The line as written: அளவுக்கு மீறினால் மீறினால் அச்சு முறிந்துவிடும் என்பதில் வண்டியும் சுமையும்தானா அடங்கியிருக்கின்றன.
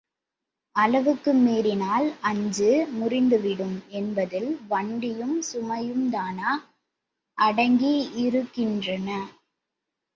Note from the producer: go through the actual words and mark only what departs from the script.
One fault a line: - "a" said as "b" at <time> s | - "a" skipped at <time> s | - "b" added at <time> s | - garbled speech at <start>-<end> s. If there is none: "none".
- "மீறினால்" skipped at 2.1 s